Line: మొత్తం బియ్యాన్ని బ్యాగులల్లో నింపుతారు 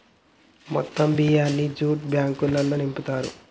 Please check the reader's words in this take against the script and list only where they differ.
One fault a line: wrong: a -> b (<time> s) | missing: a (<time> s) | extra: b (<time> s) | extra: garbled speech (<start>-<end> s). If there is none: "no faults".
extra: జ్యూట్ (1.8 s)